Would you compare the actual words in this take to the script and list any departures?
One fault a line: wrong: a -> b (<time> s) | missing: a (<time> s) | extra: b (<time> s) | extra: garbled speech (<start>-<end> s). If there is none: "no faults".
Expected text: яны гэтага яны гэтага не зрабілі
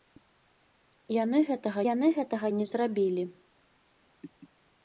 no faults